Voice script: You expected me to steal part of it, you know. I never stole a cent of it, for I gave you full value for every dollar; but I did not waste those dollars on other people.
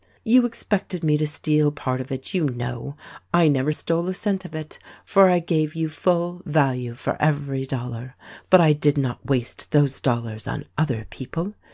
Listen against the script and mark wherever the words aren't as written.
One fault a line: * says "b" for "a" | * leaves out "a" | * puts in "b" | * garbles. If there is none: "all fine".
all fine